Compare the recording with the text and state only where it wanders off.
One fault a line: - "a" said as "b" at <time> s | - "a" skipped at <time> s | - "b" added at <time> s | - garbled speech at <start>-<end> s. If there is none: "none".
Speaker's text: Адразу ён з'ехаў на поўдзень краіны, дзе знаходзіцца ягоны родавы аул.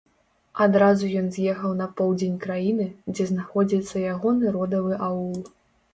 none